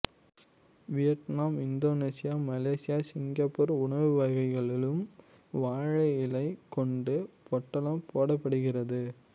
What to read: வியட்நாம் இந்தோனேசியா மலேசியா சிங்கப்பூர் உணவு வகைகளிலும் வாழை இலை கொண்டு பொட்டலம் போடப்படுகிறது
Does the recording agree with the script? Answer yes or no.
yes